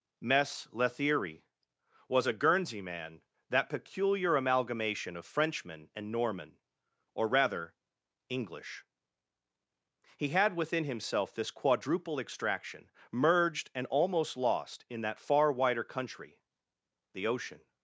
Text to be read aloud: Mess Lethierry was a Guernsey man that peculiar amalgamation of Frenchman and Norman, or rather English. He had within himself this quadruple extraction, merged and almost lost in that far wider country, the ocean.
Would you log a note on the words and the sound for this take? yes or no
no